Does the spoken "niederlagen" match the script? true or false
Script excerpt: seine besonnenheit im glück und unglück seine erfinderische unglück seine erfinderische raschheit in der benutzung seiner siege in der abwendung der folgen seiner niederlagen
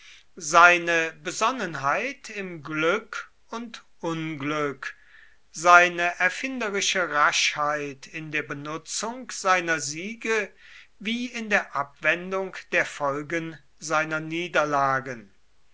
true